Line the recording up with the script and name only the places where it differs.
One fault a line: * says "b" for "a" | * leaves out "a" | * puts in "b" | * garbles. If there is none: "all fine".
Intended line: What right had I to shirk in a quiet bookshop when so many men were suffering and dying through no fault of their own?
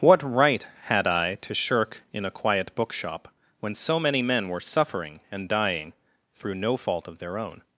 all fine